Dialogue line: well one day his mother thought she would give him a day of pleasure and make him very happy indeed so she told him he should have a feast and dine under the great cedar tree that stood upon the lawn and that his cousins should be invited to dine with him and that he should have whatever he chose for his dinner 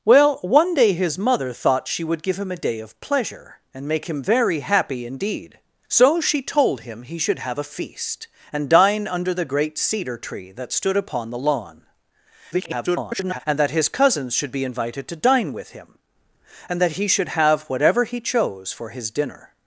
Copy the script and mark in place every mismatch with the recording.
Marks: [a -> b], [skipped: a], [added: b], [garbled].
well one day his mother thought she would give him a day of pleasure and make him very happy indeed so she told him he should have a feast and dine under the great cedar tree that stood upon the lawn [garbled] and that his cousins should be invited to dine with him and that he should have whatever he chose for his dinner